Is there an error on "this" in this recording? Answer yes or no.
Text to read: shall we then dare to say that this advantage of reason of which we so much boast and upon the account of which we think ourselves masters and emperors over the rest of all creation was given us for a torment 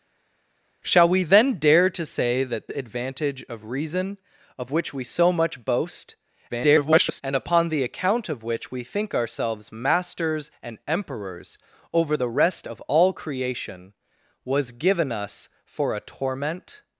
yes